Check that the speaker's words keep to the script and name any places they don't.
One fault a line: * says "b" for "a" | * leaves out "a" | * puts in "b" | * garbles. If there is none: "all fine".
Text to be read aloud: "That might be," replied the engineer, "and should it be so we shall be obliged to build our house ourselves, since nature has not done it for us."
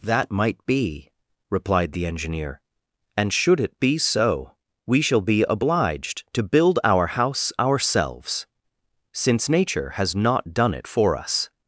all fine